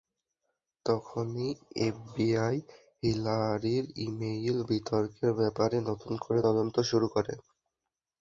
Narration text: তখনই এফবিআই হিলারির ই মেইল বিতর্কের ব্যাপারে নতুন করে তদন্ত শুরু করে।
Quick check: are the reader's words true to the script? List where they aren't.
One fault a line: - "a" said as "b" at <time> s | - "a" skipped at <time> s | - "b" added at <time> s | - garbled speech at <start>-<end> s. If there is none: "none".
none